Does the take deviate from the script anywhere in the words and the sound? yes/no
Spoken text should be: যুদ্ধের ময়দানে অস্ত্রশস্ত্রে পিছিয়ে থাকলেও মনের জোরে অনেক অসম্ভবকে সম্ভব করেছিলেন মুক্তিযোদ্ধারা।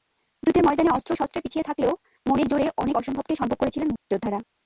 yes